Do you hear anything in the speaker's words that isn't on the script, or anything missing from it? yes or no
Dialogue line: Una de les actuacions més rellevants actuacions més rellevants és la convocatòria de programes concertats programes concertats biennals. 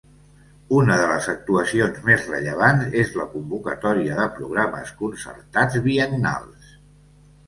yes